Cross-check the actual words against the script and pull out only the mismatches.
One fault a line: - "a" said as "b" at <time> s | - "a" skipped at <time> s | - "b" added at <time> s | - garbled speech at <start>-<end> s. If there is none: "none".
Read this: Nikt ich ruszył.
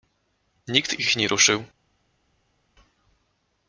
- "nie" added at 1.1 s